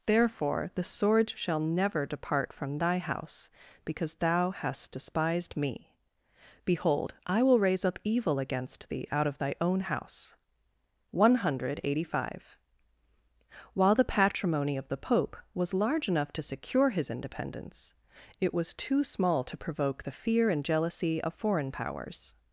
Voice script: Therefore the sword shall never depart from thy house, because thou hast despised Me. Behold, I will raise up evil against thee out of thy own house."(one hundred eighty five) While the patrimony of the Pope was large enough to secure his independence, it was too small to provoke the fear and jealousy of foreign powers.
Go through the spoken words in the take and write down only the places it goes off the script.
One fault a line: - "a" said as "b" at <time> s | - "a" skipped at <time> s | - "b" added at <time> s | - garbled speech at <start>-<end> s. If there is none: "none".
none